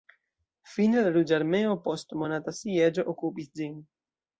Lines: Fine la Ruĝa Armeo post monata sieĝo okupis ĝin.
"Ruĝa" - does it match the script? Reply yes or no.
yes